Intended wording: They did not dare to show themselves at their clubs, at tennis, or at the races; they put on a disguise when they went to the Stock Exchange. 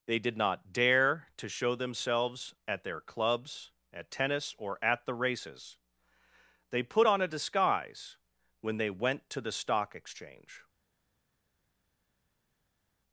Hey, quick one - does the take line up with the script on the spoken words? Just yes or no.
yes